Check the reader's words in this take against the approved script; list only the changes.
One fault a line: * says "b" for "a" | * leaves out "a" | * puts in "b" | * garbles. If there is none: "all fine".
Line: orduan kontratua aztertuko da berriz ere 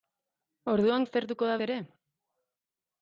* leaves out "kontratua"
* leaves out "berriz"